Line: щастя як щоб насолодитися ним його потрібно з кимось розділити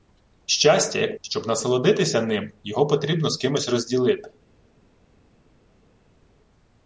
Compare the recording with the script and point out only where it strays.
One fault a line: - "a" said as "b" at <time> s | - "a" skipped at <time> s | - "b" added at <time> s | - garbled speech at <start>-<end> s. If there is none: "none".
none